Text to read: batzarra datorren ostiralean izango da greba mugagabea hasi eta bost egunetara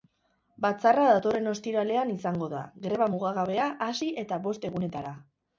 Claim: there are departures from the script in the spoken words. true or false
false